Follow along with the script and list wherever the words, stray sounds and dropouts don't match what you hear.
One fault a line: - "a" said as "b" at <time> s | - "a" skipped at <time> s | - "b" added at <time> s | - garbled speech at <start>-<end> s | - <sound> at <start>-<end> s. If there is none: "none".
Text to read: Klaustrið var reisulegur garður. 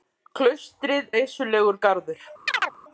- "var" skipped at 1.1 s
- chirp at 2.5-2.8 s